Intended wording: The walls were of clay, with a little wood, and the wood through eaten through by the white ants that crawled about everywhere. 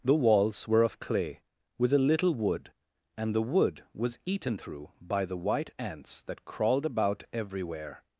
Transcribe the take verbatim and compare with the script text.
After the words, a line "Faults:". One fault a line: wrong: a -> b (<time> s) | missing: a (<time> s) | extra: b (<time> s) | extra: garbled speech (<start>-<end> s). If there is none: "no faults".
The walls were of clay, with a little wood, and the wood was eaten through by the white ants that crawled about everywhere.
Faults:
wrong: through -> was (3.9 s)